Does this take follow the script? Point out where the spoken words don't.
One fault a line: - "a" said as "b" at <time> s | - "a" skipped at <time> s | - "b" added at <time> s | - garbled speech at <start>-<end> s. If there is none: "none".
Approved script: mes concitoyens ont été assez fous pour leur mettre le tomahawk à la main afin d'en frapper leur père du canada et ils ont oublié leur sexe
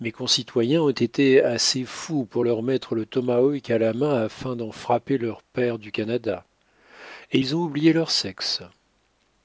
none